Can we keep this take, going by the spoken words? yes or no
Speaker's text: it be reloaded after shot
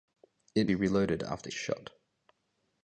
yes